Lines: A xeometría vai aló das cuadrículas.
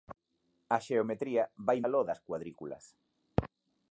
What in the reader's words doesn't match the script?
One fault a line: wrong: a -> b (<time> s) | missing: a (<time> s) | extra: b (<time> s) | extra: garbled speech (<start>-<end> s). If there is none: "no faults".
no faults